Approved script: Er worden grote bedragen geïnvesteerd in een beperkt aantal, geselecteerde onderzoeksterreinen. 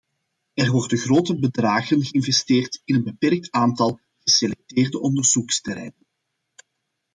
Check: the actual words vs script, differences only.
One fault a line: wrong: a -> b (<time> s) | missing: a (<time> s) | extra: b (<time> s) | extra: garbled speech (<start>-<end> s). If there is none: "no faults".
no faults